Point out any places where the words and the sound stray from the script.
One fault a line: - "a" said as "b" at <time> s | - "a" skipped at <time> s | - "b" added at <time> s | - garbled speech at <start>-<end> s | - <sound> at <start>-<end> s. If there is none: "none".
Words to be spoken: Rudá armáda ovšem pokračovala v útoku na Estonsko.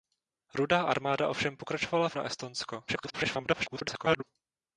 - "útoku" skipped at 2.2 s
- garbled speech at 2.9-4.2 s